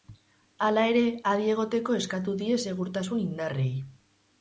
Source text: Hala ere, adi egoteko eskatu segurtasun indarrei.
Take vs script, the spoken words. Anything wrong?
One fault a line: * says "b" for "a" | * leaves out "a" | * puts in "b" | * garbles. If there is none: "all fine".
* puts in "die"